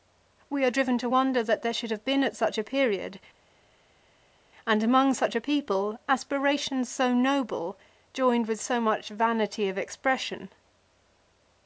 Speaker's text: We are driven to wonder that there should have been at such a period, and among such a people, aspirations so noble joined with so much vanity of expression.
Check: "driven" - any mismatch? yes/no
no